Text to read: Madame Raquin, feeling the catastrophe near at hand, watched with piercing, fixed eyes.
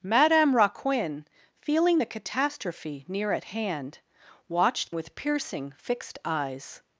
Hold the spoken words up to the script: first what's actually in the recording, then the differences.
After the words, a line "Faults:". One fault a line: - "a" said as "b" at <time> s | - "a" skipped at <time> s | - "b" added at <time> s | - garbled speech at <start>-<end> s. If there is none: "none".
Madame Raquin, feeling the catastrophe near at hand, watched with piercing, fixed eyes.
Faults:
none